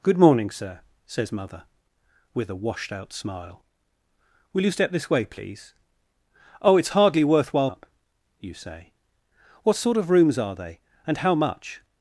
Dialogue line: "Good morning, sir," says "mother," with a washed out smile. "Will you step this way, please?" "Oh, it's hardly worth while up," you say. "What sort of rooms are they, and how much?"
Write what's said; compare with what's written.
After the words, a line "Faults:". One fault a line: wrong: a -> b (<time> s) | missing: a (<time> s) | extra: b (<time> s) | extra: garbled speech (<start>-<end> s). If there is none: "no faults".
"Good morning, sir," says "mother," with a washed out smile. "Will you step this way, please?" "Oh, it's hardly worth while up," you say. "What sort of rooms are they, and how much?"
Faults:
no faults